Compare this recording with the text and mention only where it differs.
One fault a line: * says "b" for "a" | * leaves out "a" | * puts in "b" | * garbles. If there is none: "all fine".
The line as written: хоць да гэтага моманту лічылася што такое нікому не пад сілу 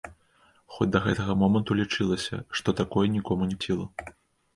* leaves out "пад"